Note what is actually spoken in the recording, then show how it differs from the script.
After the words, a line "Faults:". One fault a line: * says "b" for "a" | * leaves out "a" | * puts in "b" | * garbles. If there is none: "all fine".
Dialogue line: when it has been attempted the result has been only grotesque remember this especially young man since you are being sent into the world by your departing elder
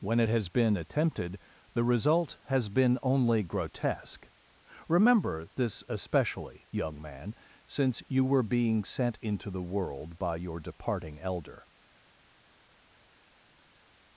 when it has been attempted the result has been only grotesque remember this especially young man since you were being sent into the world by your departing elder
Faults:
* says "were" for "are"